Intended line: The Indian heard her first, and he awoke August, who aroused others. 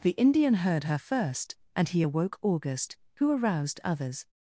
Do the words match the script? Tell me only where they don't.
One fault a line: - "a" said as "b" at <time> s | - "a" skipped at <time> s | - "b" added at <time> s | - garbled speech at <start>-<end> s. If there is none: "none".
none